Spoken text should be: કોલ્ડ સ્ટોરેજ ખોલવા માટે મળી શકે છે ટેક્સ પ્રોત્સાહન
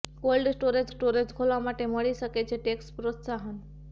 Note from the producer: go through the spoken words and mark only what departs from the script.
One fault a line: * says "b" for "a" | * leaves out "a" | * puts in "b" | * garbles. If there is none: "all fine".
* puts in "સ્ટોરેજ"